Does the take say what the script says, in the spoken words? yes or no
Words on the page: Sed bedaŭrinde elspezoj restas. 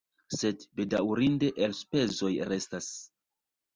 yes